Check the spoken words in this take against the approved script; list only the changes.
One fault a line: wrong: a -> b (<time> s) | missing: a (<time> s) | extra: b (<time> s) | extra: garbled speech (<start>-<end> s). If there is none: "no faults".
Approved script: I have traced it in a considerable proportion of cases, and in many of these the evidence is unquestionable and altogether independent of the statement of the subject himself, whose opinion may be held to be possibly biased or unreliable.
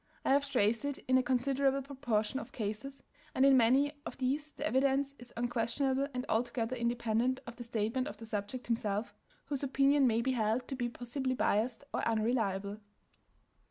no faults